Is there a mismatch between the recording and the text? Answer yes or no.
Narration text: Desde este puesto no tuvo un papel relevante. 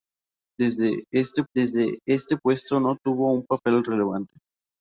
yes